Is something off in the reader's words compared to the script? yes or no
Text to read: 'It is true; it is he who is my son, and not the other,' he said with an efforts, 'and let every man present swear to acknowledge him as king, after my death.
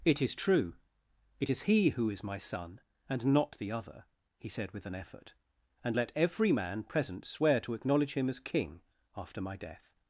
yes